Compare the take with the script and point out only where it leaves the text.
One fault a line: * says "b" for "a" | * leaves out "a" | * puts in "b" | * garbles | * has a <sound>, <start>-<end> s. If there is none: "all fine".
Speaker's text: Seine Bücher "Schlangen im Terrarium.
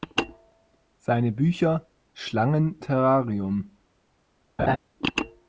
* leaves out "im"
* has a laugh, 4.6-4.8 s